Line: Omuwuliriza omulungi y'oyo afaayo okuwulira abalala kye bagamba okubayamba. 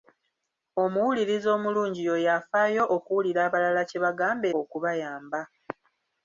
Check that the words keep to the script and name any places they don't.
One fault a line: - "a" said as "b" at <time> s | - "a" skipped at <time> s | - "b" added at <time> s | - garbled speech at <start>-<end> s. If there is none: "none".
none